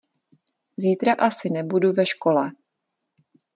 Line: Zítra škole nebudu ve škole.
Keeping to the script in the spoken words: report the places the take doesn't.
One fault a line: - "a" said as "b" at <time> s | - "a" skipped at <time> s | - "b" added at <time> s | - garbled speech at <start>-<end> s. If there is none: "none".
- "škole" said as "asi" at 1.1 s